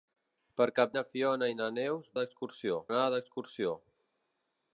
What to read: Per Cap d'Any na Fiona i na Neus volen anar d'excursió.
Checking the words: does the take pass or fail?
fail